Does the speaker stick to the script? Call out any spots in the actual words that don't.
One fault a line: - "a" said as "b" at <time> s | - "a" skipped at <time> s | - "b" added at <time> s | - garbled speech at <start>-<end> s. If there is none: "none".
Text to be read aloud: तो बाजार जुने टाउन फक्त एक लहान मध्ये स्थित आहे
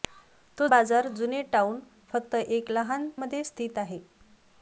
none